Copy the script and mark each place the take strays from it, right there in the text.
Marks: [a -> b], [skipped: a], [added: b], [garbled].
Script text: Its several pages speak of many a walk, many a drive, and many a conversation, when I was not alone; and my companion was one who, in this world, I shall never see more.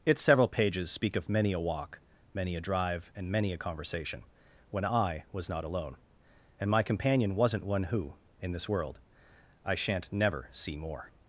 Its several pages speak of many a walk, many a drive, and many a conversation, when I was not alone; and my companion [was -> wasn't] one who, in this world, I [shall -> shan't] never see more.